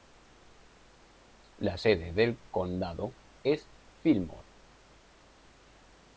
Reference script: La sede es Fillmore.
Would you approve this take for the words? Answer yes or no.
no